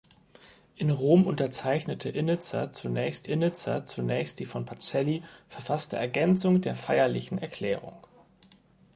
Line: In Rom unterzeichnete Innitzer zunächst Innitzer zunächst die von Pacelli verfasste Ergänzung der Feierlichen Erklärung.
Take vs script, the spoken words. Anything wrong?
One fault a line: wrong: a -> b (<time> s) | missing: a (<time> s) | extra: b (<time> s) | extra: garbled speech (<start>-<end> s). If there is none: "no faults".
no faults